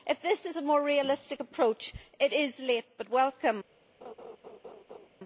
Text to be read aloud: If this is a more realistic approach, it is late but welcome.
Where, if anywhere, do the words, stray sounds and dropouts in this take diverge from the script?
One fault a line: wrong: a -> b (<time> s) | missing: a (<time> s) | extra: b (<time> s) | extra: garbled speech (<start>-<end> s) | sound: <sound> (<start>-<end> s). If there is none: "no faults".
sound: laugh (4.0-5.1 s)